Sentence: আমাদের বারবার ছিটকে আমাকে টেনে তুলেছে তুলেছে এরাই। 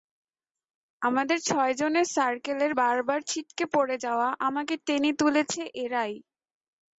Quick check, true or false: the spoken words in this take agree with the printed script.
false